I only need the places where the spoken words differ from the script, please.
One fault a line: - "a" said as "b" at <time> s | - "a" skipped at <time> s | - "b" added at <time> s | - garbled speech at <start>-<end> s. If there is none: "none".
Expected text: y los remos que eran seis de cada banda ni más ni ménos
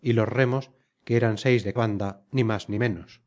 - "cada" skipped at 1.7 s